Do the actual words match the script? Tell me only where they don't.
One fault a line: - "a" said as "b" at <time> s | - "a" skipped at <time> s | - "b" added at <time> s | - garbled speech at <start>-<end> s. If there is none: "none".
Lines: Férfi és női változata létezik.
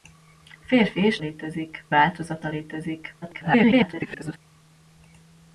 - "női" said as "létezik" at 1.2 s
- garbled speech at 3.2-4.4 s